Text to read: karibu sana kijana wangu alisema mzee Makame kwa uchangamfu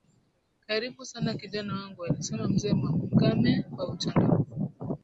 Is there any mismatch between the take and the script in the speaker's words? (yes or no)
no